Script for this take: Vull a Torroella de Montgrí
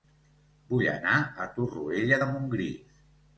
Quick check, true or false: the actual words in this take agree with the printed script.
false